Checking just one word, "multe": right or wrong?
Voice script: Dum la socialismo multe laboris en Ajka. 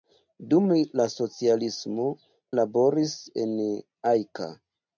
wrong